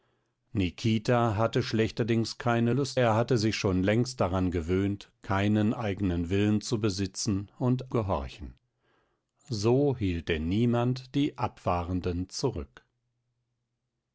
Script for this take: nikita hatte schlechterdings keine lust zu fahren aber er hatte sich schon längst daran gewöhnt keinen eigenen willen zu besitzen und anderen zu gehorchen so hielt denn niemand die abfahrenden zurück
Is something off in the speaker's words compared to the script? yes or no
yes